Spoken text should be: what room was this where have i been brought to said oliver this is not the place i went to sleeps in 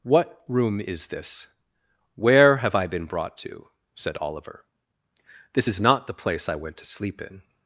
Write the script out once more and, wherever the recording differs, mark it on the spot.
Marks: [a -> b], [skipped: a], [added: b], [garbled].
what room [was -> is] this where have i been brought to said oliver this is not the place i went to [sleeps -> sleep] in